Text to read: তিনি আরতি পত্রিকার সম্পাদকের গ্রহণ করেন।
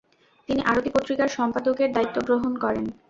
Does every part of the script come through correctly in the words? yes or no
no